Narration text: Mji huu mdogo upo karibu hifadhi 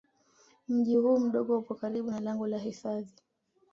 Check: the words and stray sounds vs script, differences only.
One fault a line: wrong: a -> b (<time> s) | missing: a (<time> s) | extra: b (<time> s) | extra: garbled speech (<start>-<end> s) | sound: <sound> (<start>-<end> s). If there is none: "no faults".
extra: na lango la (2.1 s)